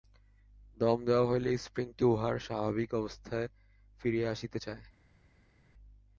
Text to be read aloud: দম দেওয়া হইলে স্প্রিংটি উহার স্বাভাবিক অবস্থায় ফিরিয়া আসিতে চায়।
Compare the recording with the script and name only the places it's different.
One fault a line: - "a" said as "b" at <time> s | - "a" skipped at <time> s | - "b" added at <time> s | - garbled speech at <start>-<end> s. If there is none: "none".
none